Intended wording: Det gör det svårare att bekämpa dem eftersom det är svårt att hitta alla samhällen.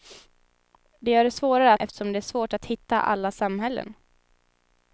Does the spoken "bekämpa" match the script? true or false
false